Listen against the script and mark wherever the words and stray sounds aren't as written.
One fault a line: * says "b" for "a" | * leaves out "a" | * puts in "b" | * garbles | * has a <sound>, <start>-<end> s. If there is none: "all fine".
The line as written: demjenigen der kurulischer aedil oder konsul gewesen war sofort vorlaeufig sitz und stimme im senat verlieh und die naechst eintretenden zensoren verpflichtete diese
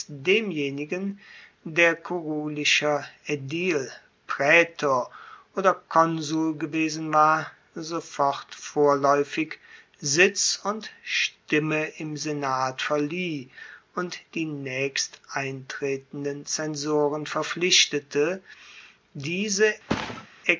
* puts in "praetor"
* has a thud, 19.9-20.3 s